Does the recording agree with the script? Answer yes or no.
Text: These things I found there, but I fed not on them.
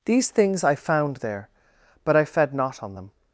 yes